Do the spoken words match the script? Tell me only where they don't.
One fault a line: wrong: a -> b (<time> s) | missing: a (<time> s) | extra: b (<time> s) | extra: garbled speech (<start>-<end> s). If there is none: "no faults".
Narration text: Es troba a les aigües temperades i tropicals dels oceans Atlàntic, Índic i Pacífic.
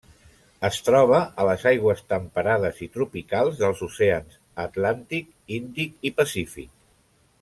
no faults